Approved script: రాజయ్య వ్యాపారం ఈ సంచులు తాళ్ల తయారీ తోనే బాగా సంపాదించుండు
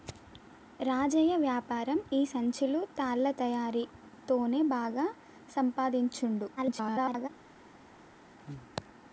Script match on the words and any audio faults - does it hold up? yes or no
no